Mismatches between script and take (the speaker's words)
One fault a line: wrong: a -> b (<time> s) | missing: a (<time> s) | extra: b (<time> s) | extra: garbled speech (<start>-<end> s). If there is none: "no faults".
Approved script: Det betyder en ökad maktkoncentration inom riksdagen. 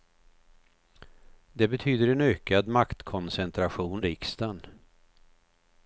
missing: inom (4.0 s)